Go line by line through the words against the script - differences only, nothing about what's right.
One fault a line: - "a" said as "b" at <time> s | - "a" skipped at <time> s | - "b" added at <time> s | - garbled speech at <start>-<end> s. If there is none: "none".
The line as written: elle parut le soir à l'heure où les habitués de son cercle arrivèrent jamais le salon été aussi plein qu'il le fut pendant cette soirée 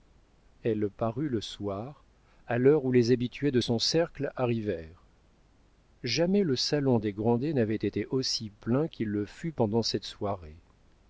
- "des grandet n'avait" added at 7.0 s